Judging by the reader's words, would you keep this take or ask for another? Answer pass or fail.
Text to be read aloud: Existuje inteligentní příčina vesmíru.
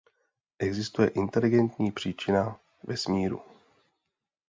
pass